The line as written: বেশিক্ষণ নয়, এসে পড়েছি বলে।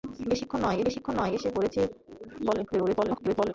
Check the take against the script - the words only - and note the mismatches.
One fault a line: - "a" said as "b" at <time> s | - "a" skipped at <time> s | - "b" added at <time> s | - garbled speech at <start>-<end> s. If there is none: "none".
- "বেশিক্ষণ নয়" added at 0.8 s
- garbled speech at 2.7-3.5 s